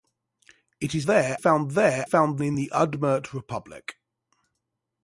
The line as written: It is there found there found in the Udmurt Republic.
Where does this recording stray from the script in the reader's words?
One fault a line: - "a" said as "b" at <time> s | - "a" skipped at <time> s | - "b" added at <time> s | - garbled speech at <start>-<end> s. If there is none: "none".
none